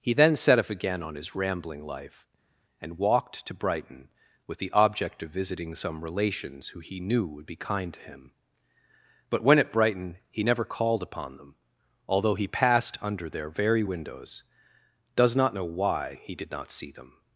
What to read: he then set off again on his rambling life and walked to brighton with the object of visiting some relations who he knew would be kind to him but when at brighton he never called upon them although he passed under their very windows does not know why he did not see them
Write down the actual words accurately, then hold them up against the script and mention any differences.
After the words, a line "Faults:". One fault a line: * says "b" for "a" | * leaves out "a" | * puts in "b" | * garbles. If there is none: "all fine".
he then set off again on his rambling life and walked to brighton with the object of visiting some relations who he knew would be kind to him but when at brighton he never called upon them although he passed under their very windows does not know why he did not see them
Faults:
all fine